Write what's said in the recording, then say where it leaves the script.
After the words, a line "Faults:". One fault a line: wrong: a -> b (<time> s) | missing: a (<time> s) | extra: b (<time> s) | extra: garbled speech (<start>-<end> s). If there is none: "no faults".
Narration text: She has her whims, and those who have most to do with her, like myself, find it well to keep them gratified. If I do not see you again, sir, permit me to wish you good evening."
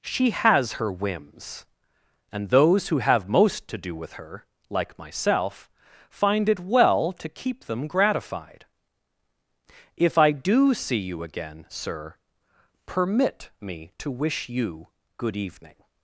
She has her whims, and those who have most to do with her, like myself, find it well to keep them gratified. If I do see you again, sir, permit me to wish you good evening."
Faults:
missing: not (10.7 s)